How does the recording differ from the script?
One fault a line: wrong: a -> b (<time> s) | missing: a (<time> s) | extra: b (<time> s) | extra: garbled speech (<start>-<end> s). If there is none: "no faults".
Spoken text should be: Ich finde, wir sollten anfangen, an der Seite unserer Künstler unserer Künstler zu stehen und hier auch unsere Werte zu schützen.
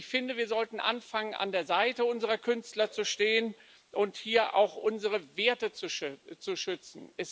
missing: unserer Künstler (2.9 s)